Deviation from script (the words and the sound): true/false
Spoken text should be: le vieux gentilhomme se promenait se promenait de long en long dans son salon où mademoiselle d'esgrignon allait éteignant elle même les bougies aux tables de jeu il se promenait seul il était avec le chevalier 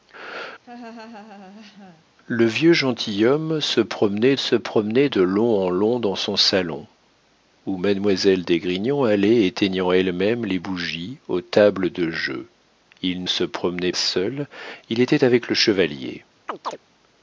true